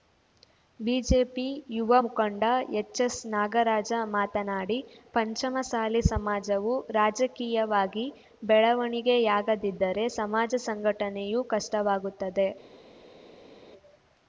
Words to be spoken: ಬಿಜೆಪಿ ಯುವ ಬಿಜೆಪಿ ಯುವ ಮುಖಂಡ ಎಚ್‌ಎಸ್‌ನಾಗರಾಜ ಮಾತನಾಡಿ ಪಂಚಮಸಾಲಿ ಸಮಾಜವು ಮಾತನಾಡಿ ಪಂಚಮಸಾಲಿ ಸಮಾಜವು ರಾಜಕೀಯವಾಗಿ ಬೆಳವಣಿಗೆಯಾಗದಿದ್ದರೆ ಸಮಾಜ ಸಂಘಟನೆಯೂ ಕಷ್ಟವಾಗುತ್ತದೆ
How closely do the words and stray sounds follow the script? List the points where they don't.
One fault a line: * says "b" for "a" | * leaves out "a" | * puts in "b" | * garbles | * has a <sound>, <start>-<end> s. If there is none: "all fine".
* leaves out "ಬಿಜೆಪಿ ಯುವ"
* leaves out "ಮಾತನಾಡಿ ಪಂಚಮಸಾಲಿ ಸಮಾಜವು"